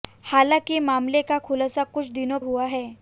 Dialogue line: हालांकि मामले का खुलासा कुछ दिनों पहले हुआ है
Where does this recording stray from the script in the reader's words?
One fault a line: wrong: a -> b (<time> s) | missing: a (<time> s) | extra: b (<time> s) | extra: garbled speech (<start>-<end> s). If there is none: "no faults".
missing: पहले (2.4 s)